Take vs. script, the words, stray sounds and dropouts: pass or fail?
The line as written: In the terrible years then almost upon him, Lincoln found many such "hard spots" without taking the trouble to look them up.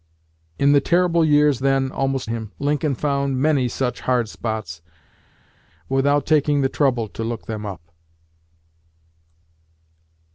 fail